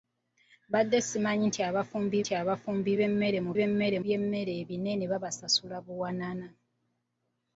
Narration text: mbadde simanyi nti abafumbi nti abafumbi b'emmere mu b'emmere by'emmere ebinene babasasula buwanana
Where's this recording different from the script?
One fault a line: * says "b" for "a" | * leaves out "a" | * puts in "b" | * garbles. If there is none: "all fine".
all fine